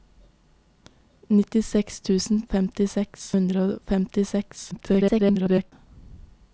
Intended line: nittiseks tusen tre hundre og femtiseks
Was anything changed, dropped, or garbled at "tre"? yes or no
yes